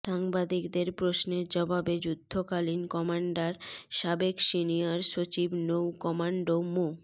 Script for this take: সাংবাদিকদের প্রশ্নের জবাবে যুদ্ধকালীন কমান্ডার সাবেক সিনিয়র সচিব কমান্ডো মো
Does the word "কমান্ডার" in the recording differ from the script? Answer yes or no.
no